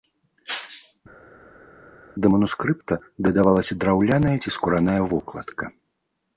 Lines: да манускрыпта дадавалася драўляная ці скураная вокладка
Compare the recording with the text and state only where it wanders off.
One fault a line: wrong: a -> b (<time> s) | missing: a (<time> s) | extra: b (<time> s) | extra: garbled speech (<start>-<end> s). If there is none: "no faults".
no faults